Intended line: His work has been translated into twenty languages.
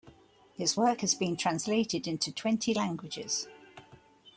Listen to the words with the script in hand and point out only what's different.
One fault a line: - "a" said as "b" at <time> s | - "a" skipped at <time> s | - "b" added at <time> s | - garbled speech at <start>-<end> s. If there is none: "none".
none